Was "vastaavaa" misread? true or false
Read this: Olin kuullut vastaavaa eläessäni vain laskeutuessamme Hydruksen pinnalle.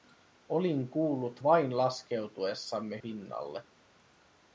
true